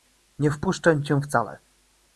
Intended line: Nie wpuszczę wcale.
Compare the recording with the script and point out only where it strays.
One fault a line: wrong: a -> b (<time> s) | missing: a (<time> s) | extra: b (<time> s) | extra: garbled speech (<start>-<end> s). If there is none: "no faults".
extra: cię (1.0 s)